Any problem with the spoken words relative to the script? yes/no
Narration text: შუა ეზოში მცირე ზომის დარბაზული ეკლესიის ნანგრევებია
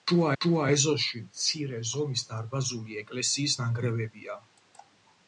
yes